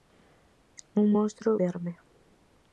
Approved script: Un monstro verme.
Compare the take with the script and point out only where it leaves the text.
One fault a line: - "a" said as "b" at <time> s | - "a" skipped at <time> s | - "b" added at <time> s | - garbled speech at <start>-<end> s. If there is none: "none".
none